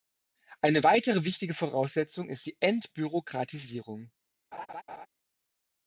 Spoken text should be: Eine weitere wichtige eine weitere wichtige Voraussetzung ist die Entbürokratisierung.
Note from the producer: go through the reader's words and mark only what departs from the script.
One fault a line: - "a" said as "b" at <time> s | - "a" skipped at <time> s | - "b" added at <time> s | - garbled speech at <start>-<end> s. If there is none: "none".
- "eine weitere wichtige" skipped at 1.5 s